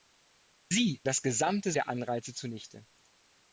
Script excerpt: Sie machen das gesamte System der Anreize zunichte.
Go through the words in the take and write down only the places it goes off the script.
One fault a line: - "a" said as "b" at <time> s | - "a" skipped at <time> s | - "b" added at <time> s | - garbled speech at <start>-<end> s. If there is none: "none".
- "machen" skipped at 1.0 s
- "System" skipped at 1.7 s